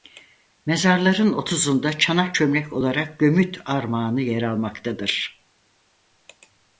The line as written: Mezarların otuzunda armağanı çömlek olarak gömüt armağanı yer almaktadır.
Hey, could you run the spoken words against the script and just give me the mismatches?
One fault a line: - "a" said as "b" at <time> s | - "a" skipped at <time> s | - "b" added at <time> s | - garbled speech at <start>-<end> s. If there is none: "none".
- "armağanı" said as "çanak" at 2.0 s